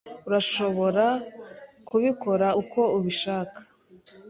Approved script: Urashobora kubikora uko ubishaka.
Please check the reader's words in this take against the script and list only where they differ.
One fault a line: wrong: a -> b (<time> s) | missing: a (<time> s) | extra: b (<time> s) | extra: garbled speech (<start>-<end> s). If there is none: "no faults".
no faults